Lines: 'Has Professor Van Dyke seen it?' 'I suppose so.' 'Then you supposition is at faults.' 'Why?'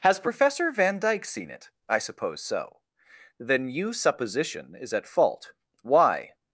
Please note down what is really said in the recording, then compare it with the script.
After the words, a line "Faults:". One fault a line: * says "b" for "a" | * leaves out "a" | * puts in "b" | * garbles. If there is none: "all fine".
'Has Professor Van Dyke seen it?' 'I suppose so.' 'Then you supposition is at fault.' 'Why?'
Faults:
* says "fault" for "faults"